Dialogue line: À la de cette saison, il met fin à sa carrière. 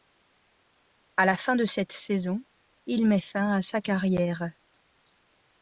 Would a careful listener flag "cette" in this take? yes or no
no